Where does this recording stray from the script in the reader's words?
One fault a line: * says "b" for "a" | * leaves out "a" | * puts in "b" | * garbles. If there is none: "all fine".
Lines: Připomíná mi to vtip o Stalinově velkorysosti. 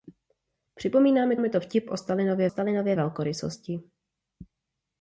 * puts in "mi"
* puts in "Stalinově"